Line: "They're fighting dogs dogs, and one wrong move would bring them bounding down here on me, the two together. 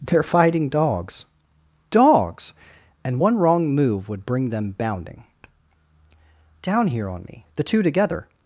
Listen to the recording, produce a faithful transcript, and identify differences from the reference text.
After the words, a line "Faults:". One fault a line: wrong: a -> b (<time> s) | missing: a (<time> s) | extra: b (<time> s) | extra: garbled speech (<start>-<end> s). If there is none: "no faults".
"They're fighting dogs dogs, and one wrong move would bring them bounding down here on me, the two together.
Faults:
no faults